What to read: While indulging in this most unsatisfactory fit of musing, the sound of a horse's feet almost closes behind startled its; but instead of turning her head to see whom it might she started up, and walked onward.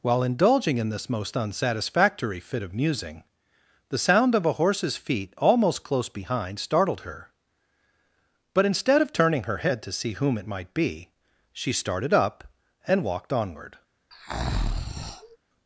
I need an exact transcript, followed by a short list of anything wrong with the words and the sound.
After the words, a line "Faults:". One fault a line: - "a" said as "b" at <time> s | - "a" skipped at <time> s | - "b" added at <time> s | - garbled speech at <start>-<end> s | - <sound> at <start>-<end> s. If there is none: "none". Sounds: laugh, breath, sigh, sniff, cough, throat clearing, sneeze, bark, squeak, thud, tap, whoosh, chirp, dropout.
While indulging in this most unsatisfactory fit of musing, the sound of a horse's feet almost close behind startled her; but instead of turning her head to see whom it might be, she started up, and walked onward.
Faults:
- "closes" said as "close" at 5.8 s
- "its" said as "her" at 7.0 s
- "be" added at 10.7 s
- breath at 14.1-15.4 s